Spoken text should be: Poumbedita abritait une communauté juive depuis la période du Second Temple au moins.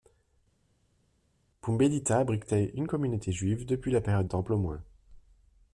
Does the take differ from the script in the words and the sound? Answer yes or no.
yes